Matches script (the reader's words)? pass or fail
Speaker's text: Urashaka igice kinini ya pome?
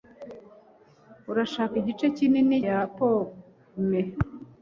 pass